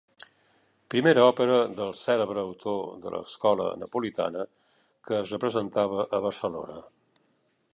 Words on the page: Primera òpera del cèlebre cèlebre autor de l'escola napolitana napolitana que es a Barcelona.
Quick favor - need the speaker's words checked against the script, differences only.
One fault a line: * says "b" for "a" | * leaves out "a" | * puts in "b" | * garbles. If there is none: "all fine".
* leaves out "cèlebre"
* leaves out "napolitana"
* puts in "representava"